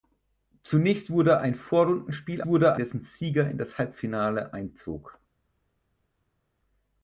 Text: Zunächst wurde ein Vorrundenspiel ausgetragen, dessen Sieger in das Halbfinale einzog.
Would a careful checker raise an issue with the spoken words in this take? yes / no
yes